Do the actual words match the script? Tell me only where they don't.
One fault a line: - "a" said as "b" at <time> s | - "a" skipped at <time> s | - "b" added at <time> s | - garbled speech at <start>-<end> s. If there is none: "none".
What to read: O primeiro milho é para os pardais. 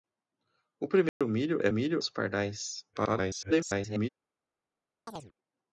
- "para" said as "milho" at 1.7 s
- garbled speech at 2.9-4.1 s